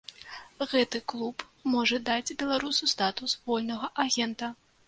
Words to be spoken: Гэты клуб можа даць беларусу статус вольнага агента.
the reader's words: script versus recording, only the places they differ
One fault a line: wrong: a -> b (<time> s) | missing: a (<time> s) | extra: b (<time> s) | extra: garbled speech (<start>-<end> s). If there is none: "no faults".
no faults